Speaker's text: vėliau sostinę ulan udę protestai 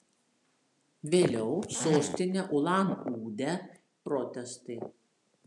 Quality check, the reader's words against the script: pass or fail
pass